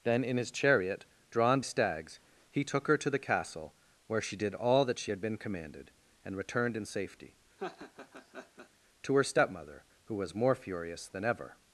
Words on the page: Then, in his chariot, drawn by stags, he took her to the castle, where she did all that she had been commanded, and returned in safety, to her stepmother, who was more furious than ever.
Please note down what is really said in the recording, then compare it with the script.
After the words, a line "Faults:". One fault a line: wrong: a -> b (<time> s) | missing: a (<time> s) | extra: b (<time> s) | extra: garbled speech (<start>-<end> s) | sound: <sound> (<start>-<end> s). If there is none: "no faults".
Then, in his chariot, drawn stags, he took her to the castle, where she did all that she had been commanded, and returned in safety, to her stepmother, who was more furious than ever.
Faults:
missing: by (1.6 s)
sound: laugh (7.6-8.7 s)